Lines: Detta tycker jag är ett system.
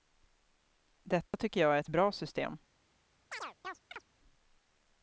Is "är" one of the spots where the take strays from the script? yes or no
no